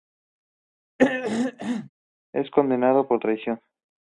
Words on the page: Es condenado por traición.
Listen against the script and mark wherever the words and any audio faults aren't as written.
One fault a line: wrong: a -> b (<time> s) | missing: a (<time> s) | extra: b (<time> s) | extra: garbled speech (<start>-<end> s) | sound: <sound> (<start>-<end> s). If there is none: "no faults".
sound: throat clearing (1.0-1.9 s)